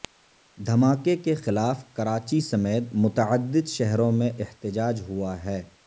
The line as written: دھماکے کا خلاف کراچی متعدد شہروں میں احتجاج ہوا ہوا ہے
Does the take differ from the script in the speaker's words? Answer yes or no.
yes